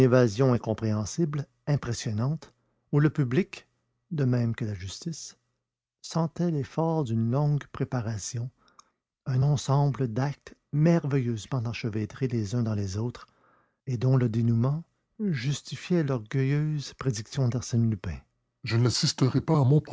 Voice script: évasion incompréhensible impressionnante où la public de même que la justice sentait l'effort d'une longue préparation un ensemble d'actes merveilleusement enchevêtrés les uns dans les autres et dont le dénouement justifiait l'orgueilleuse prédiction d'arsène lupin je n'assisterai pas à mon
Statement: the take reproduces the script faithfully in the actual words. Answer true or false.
false